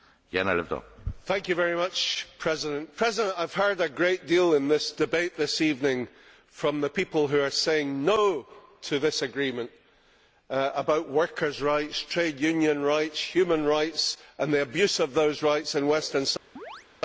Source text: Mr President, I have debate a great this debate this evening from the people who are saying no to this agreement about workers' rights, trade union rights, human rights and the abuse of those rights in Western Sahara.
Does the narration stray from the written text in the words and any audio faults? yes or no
yes